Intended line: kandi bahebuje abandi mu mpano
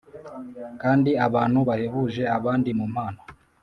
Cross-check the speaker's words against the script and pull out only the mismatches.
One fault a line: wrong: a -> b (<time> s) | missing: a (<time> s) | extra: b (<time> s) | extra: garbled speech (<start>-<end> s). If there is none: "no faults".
extra: abantu (1.2 s)